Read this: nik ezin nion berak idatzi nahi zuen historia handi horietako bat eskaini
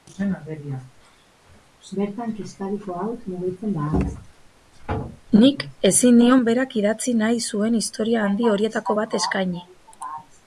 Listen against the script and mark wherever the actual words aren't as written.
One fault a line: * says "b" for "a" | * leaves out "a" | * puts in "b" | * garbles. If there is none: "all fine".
all fine